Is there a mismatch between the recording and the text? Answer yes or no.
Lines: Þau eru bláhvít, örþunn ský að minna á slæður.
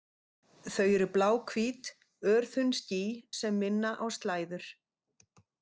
yes